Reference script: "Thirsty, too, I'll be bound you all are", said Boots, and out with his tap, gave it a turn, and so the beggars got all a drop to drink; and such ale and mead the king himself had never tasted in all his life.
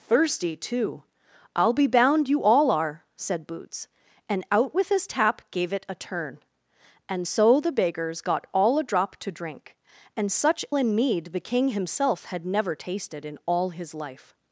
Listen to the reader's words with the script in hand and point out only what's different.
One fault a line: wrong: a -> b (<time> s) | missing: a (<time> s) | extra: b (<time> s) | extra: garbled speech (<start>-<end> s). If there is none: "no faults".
missing: ale (10.6 s)